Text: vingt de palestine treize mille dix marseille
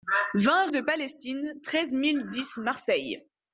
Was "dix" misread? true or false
false